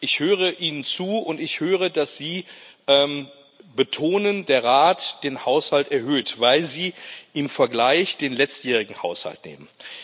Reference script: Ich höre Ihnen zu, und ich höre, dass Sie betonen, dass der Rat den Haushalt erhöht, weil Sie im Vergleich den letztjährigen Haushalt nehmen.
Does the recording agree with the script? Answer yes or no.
no